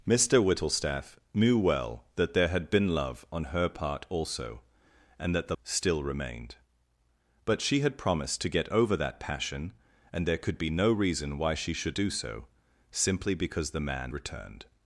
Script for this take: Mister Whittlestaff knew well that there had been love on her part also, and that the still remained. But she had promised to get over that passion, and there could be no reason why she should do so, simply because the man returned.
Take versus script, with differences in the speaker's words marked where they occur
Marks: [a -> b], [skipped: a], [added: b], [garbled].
Mister Whittlestaff knew well that there had been love on her part also, and that the still remained. But she had promised to get over that passion, and there could be no reason why she should do so, simply because the man returned.